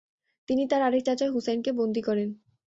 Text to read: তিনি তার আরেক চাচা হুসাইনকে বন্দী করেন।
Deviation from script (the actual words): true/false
false